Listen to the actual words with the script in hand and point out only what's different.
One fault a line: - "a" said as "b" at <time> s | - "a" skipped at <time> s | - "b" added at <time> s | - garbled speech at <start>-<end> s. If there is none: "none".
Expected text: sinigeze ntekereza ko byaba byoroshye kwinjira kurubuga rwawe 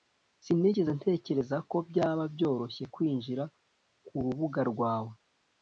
none